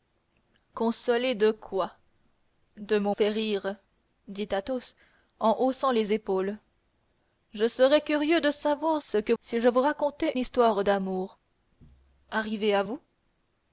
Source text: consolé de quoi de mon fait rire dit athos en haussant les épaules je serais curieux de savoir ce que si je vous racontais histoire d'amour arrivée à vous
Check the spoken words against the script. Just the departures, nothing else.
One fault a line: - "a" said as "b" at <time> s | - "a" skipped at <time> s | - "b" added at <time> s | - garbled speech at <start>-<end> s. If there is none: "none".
none